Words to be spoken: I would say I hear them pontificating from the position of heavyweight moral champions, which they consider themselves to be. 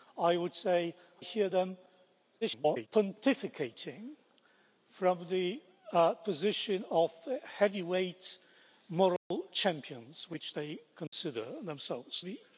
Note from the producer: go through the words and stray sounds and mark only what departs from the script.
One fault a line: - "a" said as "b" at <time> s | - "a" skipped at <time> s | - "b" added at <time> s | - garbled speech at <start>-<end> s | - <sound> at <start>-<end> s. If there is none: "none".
- "I" skipped at 0.9 s
- garbled speech at 2.4-2.9 s
- dropout at 9.2-9.3 s
- dropout at 11.1-11.1 s
- "to" skipped at 12.2 s